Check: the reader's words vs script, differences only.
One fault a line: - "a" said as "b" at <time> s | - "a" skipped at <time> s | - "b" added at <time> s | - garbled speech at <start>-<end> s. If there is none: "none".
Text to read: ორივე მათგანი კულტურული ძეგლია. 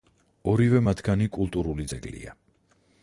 none